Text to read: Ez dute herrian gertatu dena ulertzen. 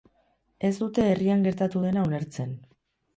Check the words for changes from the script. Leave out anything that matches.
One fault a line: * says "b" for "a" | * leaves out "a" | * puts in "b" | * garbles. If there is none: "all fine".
all fine